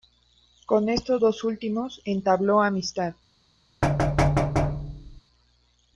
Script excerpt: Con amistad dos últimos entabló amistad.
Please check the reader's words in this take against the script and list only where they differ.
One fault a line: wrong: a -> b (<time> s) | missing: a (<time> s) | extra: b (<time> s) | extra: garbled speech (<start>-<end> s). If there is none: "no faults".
wrong: amistad -> estos (0.9 s)